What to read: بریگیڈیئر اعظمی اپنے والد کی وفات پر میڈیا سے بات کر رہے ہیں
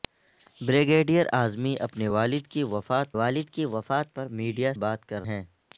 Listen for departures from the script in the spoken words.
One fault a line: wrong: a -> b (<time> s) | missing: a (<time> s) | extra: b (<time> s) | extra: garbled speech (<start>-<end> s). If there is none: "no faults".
extra: والد کی وفات (3.1 s)
missing: سے (4.7 s)
missing: رہے (5.2 s)